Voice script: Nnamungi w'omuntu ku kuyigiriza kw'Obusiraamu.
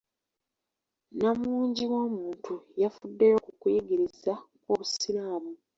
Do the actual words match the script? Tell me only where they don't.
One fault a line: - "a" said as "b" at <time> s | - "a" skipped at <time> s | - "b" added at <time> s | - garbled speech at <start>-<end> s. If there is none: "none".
- "yafuddeyo" added at 2.8 s